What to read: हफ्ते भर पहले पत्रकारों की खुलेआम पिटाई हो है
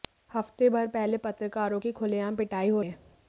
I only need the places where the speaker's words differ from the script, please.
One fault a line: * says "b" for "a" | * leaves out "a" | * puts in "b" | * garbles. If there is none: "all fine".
all fine